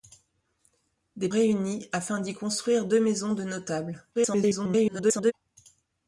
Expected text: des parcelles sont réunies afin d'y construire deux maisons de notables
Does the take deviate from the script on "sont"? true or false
true